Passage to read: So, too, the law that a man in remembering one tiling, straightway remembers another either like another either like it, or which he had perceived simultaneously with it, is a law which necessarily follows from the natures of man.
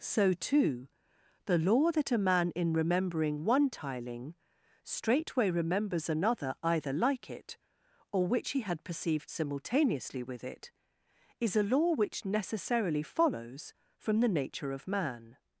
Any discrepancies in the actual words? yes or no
yes